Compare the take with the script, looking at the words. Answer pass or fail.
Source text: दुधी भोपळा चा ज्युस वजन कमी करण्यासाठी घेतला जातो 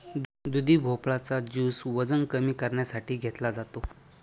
pass